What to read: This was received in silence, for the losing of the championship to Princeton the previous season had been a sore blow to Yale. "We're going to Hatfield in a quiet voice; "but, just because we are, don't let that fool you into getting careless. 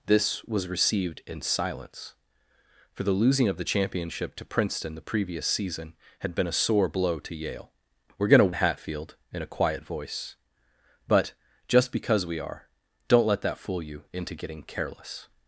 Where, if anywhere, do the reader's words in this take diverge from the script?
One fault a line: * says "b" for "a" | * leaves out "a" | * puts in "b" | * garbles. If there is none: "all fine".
all fine